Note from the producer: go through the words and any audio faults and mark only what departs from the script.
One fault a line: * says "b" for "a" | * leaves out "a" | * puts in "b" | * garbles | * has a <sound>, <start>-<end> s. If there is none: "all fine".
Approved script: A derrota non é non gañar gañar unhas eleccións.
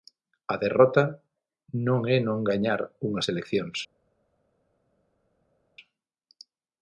* leaves out "gañar"